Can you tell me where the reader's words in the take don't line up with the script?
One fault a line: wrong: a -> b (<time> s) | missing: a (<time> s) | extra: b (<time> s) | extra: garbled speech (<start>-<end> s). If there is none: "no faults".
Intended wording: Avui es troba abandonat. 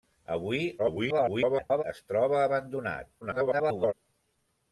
extra: garbled speech (0.8-1.8 s)
extra: garbled speech (3.2-3.9 s)